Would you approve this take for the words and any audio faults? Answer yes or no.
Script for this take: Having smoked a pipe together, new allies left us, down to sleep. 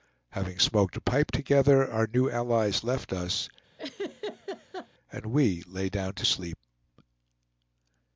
no